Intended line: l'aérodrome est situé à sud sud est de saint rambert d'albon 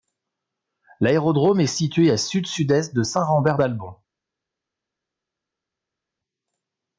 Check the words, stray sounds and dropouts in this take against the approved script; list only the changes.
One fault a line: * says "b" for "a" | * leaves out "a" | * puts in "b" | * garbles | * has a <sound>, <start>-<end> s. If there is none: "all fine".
all fine